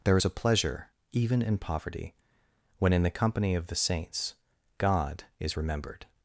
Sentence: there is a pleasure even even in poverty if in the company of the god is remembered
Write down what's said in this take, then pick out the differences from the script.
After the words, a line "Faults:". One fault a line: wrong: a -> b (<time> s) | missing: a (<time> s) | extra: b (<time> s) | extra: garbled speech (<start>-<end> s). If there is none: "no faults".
there is a pleasure even in poverty when in the company of the saints god is remembered
Faults:
missing: even (1.4 s)
wrong: if -> when (2.8 s)
extra: saints (3.8 s)